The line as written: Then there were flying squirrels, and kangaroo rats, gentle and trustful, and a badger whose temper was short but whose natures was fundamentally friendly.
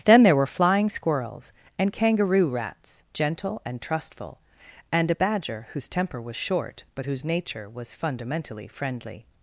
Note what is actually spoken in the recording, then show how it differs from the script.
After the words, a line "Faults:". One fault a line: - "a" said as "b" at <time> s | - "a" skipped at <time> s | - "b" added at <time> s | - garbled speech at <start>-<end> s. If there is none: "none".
Then there were flying squirrels, and kangaroo rats, gentle and trustful, and a badger whose temper was short but whose nature was fundamentally friendly.
Faults:
- "natures" said as "nature" at 7.2 s